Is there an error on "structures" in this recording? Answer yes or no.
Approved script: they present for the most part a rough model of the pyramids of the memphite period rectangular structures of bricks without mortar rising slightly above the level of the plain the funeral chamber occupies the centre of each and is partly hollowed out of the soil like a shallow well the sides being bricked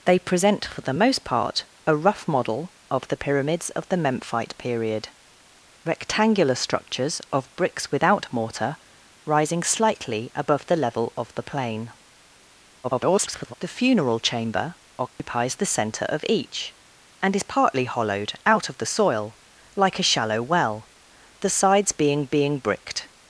no